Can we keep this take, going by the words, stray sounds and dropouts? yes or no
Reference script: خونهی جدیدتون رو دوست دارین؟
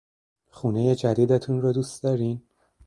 yes